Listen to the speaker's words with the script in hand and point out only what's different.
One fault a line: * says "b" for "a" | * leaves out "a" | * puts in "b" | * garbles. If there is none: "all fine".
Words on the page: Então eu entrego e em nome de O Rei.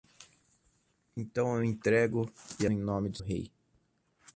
all fine